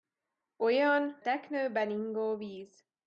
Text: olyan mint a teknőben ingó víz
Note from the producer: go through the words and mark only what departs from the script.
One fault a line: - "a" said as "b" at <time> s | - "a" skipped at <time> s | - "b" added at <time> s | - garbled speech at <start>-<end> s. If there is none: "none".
- "mint a" skipped at 1.2 s